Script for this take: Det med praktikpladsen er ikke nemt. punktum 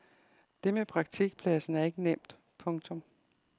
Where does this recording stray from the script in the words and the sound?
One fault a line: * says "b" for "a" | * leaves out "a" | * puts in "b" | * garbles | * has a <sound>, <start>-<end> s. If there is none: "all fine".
all fine